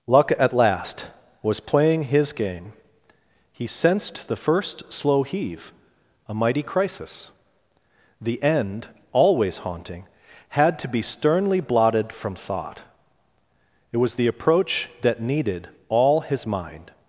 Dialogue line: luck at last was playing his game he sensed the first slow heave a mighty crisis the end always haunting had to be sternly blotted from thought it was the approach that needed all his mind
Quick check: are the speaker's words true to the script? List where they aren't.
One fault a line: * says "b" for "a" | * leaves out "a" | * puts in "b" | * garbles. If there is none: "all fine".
all fine